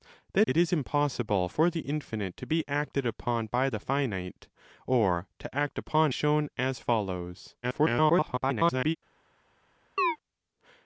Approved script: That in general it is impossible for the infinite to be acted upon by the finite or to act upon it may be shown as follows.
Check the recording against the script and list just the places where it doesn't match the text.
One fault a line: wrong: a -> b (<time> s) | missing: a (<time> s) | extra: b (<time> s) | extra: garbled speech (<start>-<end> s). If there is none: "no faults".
missing: in general (0.5 s)
missing: it may be (6.1 s)
extra: garbled speech (7.6-9.0 s)